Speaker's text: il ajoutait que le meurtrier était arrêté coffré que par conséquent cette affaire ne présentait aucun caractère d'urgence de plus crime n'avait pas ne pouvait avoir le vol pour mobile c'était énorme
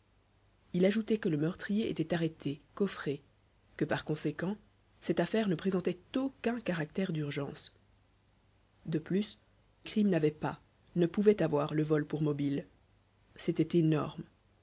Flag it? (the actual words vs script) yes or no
no